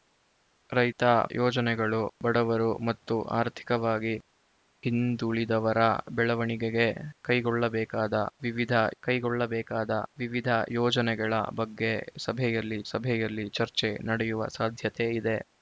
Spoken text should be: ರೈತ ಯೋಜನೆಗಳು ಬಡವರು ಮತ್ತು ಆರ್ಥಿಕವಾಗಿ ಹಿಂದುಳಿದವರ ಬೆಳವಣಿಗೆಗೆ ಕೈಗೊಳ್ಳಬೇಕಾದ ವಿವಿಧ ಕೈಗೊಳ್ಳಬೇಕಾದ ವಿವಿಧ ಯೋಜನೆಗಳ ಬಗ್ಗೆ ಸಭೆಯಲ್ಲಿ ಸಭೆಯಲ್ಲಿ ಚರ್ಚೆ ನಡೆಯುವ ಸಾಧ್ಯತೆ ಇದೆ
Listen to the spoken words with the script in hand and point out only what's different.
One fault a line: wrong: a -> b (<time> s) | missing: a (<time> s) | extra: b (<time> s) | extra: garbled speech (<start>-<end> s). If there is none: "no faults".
no faults